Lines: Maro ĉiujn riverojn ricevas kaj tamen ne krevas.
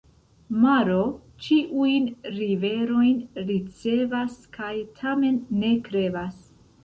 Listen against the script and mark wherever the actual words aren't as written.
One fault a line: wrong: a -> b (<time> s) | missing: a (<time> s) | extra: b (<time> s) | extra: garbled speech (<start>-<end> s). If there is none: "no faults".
no faults